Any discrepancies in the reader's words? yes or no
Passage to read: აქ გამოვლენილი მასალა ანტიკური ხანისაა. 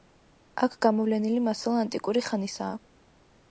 no